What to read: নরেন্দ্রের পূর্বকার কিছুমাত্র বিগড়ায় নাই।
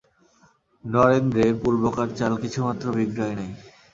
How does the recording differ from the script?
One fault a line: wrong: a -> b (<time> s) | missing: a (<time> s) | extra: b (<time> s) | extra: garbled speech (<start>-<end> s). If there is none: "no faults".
extra: চাল (2.2 s)